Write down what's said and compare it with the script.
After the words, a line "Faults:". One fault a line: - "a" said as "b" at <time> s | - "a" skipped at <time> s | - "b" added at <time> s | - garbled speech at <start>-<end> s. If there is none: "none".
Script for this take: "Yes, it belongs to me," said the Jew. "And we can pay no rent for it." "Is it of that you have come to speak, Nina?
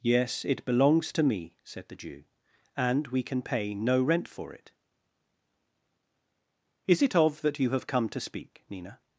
"Yes, it belongs to me," said the Jew. "And we can pay no rent for it." "Is it of that you have come to speak, Nina?
Faults:
none